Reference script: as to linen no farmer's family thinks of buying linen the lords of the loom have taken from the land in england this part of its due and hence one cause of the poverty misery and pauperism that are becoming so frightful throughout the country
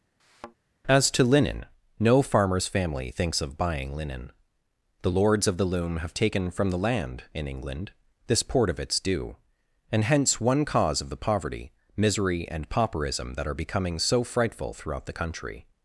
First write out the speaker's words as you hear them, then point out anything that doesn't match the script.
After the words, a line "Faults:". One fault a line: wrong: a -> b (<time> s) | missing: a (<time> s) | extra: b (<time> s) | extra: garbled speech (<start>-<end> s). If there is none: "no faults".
as to linen no farmer's family thinks of buying linen the lords of the loom have taken from the land in england this port of its due and hence one cause of the poverty misery and pauperism that are becoming so frightful throughout the country
Faults:
wrong: part -> port (8.4 s)